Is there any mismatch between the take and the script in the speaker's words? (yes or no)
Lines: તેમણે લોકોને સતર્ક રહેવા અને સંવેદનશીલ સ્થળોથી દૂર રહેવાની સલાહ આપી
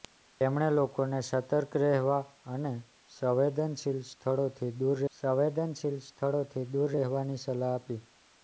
yes